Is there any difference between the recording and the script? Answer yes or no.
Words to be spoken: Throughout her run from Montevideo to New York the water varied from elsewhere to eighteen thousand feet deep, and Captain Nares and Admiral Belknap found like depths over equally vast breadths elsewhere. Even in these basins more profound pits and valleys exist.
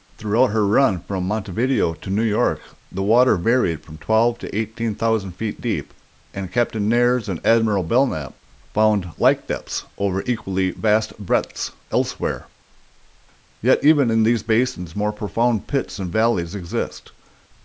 yes